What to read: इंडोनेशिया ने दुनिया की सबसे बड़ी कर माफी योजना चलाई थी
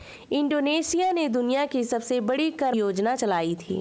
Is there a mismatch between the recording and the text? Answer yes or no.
yes